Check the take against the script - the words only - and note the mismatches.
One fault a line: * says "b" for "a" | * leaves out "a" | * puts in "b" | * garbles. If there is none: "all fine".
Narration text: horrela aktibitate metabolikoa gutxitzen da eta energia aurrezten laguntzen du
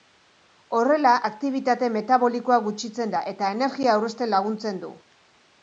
all fine